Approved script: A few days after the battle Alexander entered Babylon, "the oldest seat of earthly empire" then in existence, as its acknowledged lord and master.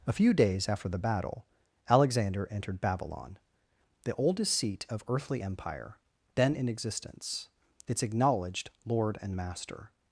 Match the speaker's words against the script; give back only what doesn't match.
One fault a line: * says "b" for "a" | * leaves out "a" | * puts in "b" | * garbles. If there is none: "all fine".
* leaves out "as"